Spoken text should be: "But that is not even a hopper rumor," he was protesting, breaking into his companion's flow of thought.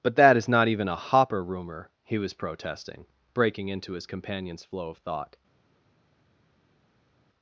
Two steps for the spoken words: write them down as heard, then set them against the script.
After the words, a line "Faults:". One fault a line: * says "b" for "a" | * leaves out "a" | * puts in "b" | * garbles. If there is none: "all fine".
"But that is not even a hopper rumor," he was protesting, breaking into his companion's flow of thought.
Faults:
all fine